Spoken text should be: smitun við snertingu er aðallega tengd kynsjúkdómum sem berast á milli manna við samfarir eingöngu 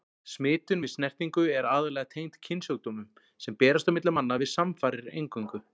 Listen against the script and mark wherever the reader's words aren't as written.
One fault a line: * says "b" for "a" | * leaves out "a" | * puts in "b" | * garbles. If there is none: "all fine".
all fine